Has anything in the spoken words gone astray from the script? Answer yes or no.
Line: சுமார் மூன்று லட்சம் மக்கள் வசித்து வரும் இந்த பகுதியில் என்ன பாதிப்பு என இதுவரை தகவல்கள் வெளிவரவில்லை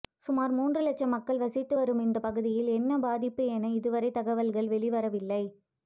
no